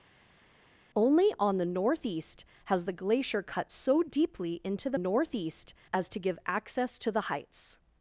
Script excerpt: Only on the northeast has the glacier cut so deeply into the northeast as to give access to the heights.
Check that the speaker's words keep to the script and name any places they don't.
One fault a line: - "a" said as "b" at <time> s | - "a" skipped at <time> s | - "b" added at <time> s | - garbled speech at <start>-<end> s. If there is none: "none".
none